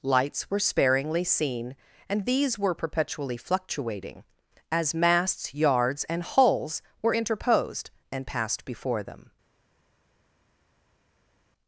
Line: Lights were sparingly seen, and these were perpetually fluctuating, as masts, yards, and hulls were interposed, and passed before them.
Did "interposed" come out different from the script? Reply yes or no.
no